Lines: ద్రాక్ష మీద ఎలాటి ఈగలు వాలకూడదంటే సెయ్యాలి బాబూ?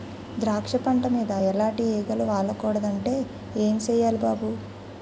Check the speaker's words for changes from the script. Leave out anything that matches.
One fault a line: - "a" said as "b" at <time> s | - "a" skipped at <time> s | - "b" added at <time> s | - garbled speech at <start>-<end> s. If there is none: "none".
- "పంట" added at 0.8 s
- "ఏం" added at 3.6 s